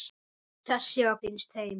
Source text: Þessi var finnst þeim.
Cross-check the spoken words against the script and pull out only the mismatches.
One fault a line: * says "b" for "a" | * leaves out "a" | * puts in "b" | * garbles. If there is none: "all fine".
all fine